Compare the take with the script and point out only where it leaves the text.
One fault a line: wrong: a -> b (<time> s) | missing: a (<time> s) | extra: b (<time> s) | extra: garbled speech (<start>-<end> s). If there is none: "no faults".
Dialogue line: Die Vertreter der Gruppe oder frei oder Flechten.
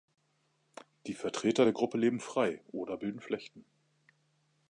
wrong: oder -> leben (2.0 s)
extra: bilden (3.0 s)